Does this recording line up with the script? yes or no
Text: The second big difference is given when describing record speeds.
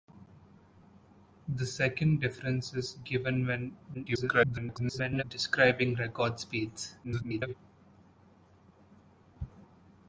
no